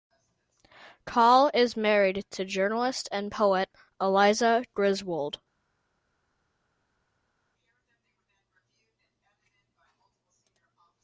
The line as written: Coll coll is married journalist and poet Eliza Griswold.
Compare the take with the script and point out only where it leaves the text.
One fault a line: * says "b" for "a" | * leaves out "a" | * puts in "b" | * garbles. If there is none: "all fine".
* leaves out "coll"
* puts in "to"